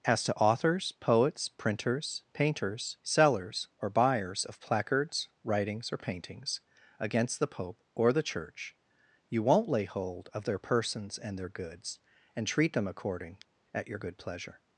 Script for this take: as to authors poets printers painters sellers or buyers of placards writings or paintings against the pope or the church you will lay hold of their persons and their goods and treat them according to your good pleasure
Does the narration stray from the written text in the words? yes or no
yes